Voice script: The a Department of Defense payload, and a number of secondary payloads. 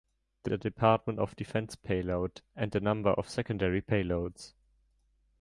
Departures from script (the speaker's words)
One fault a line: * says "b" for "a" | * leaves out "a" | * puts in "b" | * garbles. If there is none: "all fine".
all fine